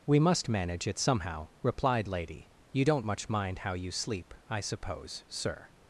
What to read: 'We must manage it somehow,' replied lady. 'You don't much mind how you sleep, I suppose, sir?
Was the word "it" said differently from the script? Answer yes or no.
no